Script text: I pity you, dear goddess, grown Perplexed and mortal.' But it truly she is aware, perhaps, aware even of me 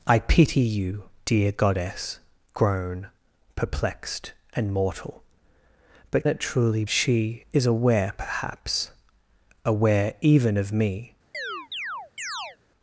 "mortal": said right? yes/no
yes